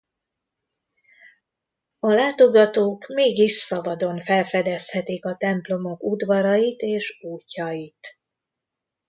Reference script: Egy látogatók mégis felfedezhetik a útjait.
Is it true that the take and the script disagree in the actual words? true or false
true